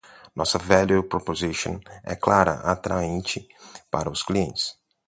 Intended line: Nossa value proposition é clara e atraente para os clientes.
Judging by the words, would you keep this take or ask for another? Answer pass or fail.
pass